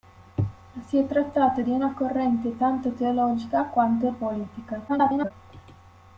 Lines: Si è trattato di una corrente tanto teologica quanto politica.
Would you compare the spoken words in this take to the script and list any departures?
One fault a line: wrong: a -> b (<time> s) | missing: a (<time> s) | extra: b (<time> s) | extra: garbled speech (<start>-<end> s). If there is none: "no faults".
extra: garbled speech (4.9-5.3 s)